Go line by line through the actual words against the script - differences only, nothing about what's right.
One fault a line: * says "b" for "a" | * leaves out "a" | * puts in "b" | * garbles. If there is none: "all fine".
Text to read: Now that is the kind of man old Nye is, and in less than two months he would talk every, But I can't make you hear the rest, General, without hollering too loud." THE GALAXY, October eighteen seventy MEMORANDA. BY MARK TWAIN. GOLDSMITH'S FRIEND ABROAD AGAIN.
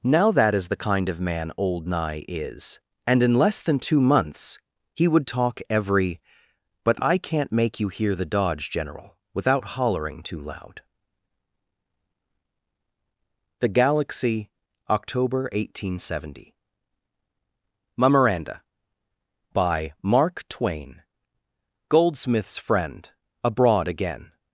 * says "dodge" for "rest"